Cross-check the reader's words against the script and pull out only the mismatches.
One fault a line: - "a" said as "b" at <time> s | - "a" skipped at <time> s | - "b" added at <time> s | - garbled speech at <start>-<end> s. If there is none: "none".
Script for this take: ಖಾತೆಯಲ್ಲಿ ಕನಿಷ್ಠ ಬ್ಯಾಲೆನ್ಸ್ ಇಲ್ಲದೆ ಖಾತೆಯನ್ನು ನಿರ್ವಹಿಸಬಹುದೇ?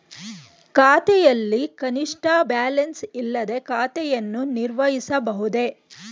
none